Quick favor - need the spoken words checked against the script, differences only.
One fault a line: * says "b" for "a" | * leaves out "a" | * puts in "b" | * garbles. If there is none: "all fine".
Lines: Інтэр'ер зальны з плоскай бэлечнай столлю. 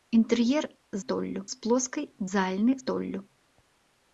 * says "столлю" for "зальны"
* says "зальны" for "бэлечнай"